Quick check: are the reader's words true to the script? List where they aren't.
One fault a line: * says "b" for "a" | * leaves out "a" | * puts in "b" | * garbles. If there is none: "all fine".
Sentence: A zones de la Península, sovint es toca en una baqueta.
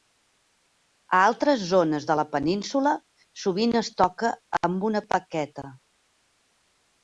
* puts in "altres"
* says "amb" for "en"